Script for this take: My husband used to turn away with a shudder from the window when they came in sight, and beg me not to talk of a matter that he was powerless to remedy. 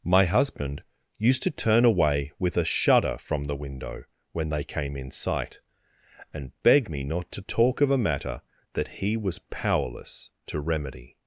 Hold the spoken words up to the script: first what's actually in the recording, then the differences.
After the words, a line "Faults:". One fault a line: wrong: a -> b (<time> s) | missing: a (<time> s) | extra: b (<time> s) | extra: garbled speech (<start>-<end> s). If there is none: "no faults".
My husband used to turn away with a shudder from the window when they came in sight, and beg me not to talk of a matter that he was powerless to remedy.
Faults:
no faults